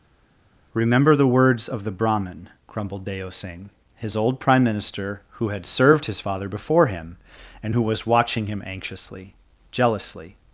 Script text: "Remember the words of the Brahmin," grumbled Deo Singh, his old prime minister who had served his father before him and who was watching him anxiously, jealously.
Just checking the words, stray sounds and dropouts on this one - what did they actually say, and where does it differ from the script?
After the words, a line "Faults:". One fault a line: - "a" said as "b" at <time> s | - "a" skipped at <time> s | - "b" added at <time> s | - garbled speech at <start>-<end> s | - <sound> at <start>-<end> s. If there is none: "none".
"Remember the words of the Brahmin," grumbled Deo Singh, his old prime minister who had served his father before him and who was watching him anxiously, jealously.
Faults:
none